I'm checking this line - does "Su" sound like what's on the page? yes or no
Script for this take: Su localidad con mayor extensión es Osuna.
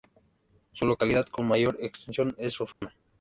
yes